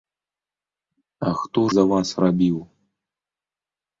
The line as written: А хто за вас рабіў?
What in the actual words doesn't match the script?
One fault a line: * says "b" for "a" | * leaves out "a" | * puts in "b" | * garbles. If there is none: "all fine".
all fine